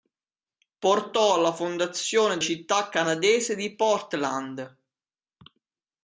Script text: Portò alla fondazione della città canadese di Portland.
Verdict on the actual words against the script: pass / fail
fail